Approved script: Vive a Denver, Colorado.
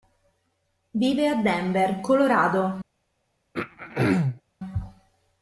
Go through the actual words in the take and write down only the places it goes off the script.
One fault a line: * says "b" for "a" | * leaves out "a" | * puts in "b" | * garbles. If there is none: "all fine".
all fine